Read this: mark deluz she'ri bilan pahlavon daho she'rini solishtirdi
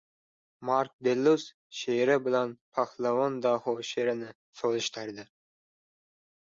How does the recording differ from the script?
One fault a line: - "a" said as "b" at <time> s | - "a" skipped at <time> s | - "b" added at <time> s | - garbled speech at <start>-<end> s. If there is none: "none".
none